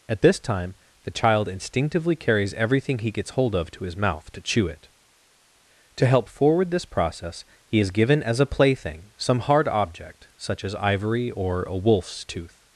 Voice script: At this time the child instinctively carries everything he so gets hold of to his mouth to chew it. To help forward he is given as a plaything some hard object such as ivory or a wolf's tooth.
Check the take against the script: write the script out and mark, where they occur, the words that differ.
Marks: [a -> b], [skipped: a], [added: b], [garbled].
At this time the child instinctively carries everything he [skipped: so] gets hold of to his mouth to chew it. To help forward [added: this process] he is given as a plaything some hard object such as ivory or a wolf's tooth.